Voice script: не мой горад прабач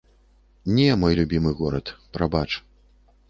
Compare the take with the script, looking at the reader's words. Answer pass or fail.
fail